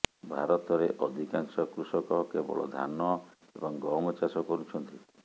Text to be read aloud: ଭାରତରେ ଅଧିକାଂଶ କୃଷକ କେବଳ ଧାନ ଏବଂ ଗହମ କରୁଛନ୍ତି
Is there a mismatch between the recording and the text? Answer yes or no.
yes